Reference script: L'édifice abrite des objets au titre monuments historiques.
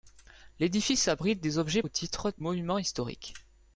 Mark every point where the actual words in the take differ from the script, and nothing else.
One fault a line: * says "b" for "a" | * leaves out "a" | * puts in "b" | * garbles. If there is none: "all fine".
all fine